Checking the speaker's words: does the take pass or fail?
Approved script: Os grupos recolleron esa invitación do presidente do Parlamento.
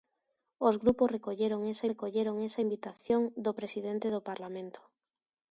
fail